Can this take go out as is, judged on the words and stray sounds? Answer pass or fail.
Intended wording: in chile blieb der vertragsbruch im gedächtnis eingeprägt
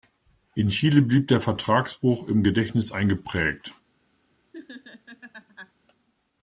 fail